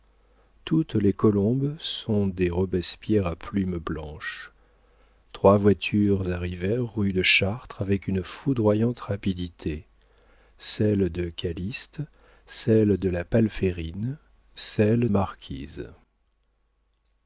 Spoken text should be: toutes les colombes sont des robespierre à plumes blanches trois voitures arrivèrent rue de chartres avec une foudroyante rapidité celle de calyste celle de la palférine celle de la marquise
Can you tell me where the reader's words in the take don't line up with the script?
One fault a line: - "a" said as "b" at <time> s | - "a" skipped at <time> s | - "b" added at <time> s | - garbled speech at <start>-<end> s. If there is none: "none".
- "de la" skipped at 15.1 s